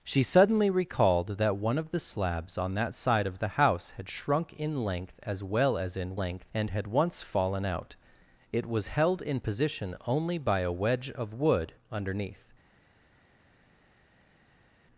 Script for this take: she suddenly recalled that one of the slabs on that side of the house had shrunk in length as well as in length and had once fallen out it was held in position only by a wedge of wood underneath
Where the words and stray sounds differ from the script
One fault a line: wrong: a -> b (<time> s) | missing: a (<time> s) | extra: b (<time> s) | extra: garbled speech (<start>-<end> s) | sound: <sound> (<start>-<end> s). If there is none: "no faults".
no faults